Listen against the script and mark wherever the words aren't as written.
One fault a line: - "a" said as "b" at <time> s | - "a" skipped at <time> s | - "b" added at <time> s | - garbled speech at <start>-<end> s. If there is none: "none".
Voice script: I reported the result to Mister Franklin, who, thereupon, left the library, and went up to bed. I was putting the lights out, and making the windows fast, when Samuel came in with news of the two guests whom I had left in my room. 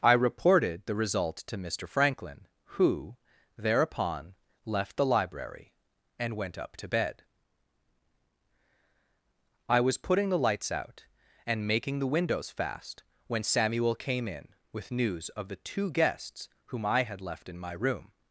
none